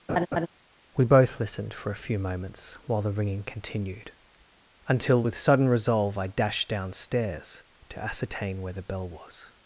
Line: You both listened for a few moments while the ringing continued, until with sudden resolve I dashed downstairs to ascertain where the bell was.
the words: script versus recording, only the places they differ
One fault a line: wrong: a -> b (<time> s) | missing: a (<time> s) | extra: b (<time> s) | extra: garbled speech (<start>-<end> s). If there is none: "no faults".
wrong: You -> We (1.0 s)